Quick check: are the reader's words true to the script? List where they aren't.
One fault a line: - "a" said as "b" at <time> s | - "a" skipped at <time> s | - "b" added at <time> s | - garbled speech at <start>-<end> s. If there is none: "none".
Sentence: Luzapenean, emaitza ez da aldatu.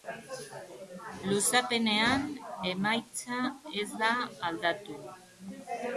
none